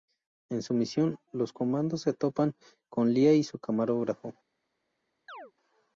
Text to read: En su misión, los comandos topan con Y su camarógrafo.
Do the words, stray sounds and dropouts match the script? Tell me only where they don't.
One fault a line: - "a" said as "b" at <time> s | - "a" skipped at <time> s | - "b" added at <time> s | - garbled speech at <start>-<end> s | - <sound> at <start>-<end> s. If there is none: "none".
- "se" added at 2.0 s
- "Lia" added at 3.1 s
- chirp at 5.3-5.5 s